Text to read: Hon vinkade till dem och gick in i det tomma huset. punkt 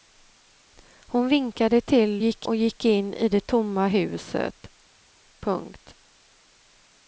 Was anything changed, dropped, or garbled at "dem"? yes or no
yes